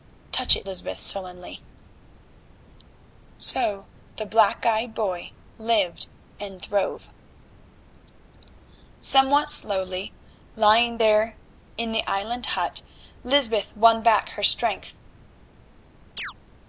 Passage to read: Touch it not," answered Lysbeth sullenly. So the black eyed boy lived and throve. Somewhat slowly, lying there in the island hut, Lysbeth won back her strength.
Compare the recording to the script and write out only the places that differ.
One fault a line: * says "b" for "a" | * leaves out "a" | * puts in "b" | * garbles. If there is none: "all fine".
* leaves out "not answered"